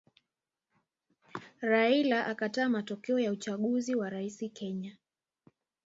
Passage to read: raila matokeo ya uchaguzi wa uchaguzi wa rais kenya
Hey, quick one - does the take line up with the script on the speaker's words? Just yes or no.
no